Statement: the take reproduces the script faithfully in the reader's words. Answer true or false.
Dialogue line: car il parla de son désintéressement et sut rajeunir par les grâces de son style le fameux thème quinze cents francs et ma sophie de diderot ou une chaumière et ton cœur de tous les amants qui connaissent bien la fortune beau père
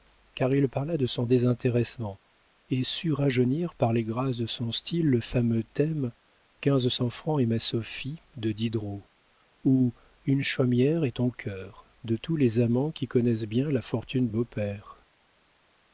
true